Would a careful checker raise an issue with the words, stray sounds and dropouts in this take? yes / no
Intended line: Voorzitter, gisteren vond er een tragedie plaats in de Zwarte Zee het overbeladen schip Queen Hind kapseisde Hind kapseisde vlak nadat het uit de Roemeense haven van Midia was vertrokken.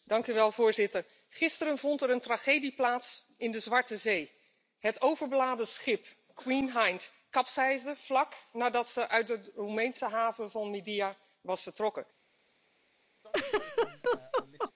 yes